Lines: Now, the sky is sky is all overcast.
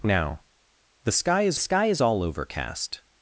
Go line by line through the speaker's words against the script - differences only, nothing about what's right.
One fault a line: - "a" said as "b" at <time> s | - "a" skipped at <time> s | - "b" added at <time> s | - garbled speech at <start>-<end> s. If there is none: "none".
none